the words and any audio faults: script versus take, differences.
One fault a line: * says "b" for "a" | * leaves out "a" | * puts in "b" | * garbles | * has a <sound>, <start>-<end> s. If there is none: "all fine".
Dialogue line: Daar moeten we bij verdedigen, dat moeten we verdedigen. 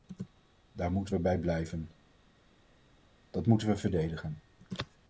* says "blijven" for "verdedigen"